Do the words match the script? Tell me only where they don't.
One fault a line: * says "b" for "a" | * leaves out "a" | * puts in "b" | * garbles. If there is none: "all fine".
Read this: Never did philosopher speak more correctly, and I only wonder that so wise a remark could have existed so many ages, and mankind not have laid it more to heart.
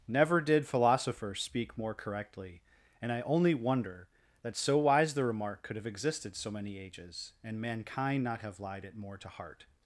* says "the" for "a"
* says "lied" for "laid"